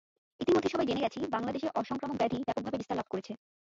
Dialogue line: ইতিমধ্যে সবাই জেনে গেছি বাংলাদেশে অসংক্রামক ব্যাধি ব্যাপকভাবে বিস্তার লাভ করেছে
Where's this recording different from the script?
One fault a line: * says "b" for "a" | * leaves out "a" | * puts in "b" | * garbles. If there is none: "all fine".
all fine